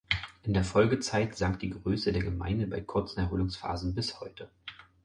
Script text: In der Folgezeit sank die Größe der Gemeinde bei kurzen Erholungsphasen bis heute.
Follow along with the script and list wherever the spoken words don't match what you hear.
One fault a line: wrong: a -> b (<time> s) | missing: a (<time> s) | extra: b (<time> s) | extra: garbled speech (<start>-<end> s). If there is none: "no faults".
no faults